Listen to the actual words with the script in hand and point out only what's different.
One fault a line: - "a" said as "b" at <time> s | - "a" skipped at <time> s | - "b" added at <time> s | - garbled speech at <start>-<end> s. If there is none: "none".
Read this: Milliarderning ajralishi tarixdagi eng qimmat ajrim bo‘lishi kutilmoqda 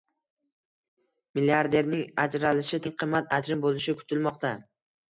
- "tarixdagi" skipped at 2.8 s